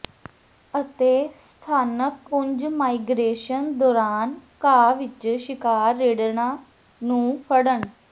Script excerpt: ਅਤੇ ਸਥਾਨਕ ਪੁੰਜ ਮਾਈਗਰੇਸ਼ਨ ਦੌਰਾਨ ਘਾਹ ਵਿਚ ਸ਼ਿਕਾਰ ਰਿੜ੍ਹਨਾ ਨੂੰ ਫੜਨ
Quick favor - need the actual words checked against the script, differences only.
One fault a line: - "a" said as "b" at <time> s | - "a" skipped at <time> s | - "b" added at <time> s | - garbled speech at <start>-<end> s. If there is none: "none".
none